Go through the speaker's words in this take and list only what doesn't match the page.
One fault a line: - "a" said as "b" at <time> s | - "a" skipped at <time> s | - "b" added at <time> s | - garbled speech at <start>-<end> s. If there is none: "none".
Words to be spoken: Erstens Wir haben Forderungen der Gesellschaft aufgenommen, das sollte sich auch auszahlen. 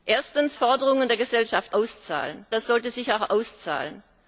- "Wir haben" skipped at 0.6 s
- "aufgenommen" said as "auszahlen" at 1.7 s